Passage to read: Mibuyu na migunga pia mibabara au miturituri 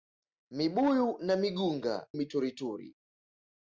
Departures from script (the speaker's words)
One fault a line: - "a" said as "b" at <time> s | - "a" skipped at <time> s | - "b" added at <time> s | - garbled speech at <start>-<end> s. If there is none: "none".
- "pia mibabara au" skipped at 2.1 s